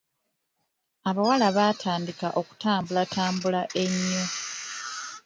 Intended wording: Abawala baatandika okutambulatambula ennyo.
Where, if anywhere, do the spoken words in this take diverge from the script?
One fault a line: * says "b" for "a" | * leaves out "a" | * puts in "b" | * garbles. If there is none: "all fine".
all fine